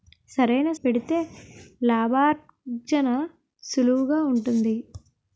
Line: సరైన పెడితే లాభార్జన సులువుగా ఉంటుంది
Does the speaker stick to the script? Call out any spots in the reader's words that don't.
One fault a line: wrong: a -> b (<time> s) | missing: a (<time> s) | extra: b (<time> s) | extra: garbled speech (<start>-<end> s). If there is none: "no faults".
no faults